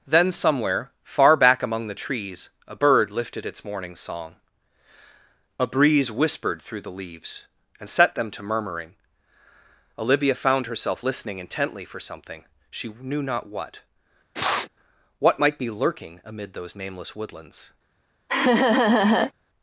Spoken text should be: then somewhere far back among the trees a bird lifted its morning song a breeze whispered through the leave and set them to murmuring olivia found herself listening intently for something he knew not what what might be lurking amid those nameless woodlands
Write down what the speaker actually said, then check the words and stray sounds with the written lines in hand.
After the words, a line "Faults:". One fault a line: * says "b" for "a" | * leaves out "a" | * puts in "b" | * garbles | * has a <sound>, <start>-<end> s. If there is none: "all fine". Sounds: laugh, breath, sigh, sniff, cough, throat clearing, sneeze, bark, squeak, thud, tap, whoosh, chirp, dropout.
then somewhere far back among the trees a bird lifted its morning song a breeze whispered through the leaves and set them to murmuring olivia found herself listening intently for something she knew not what what might be lurking amid those nameless woodlands
Faults:
* says "leaves" for "leave"
* says "she" for "he"
* has a sniff, 14.3-14.7 s
* has a laugh, 18.3-19.3 s